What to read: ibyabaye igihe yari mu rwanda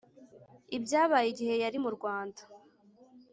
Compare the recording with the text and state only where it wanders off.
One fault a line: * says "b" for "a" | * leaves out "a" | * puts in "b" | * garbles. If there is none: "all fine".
all fine